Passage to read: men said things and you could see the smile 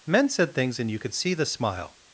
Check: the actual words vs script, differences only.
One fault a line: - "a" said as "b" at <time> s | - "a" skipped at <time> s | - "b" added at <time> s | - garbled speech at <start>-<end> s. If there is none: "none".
none